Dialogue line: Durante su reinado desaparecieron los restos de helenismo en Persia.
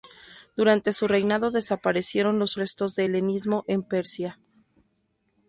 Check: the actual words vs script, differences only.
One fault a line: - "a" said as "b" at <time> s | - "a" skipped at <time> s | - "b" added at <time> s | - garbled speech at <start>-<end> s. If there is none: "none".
none